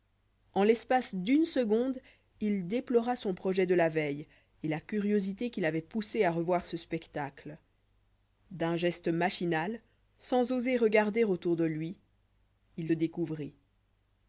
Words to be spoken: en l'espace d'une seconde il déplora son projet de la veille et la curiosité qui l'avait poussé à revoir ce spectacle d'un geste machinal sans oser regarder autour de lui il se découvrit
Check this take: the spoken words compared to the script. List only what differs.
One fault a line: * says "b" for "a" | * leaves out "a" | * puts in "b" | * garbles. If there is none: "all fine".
* leaves out "se"